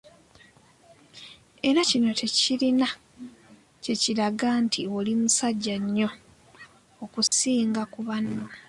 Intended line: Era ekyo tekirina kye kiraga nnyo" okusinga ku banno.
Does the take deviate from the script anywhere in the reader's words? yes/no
yes